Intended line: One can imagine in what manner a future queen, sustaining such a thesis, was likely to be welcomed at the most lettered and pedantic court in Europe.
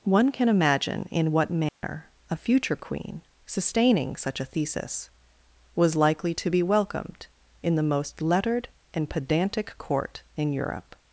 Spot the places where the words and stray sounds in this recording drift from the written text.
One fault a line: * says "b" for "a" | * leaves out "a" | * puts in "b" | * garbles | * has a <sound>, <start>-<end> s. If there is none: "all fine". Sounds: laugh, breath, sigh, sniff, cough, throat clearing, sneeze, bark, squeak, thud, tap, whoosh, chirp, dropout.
* has a dropout, 1.7-1.8 s
* says "in" for "at"